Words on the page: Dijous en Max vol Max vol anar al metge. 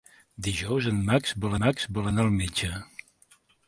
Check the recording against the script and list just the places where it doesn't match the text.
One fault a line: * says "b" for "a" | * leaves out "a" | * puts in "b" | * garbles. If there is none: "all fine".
all fine